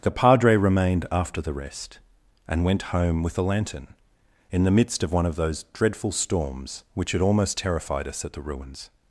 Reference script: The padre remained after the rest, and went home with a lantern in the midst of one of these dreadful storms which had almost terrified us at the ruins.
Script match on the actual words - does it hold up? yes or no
no